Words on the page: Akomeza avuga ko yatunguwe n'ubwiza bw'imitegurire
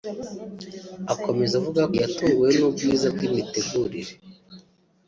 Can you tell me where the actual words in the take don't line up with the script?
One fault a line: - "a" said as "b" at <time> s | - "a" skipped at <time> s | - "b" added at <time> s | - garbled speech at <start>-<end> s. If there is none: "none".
- "ko" skipped at 1.8 s